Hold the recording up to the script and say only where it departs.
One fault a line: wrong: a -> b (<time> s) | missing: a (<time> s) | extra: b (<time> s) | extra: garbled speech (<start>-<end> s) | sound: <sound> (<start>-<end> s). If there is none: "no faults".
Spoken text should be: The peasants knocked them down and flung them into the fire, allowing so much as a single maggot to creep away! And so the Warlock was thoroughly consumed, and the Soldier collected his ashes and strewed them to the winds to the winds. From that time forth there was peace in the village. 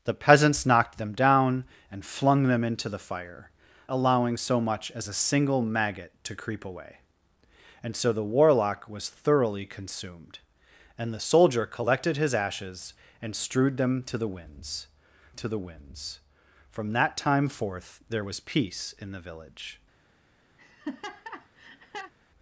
sound: laugh (20.6-22.1 s)